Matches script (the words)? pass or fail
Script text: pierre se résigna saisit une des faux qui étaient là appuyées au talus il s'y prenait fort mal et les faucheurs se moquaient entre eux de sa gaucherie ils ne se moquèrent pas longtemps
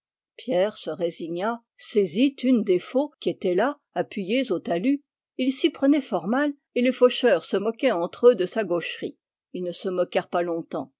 pass